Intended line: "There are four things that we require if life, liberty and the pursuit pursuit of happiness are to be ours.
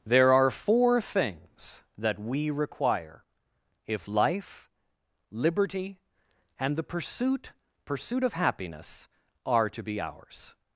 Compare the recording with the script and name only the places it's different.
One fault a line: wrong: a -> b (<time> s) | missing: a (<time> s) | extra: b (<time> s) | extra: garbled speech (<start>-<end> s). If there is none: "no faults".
no faults